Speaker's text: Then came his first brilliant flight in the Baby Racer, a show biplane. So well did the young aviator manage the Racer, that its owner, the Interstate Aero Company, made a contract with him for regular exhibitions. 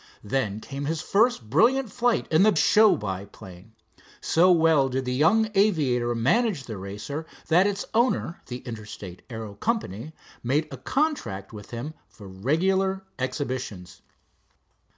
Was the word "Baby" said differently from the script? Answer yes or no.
yes